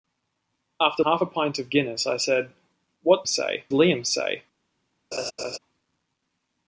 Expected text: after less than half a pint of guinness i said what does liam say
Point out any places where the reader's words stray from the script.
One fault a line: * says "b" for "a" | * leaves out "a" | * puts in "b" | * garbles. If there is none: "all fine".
* leaves out "less than"
* says "say" for "does"